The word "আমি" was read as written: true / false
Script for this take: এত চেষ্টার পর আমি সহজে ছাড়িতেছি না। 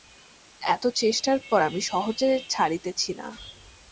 true